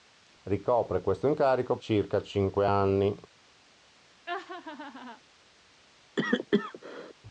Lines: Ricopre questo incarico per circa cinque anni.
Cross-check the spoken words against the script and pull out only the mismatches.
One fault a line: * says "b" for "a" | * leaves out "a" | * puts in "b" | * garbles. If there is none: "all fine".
* leaves out "per"